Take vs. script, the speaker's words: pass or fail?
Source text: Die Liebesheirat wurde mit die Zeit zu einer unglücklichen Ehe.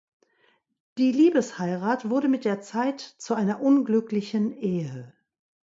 fail